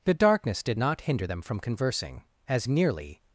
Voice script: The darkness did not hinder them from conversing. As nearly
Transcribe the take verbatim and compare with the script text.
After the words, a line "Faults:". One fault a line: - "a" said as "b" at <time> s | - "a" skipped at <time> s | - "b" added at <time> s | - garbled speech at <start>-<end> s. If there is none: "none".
The darkness did not hinder them from conversing. As nearly
Faults:
none